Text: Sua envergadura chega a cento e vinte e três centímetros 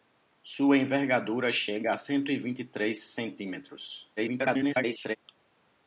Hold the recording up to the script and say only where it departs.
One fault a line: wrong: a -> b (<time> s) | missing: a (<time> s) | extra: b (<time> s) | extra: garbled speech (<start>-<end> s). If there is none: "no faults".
extra: garbled speech (4.2-5.2 s)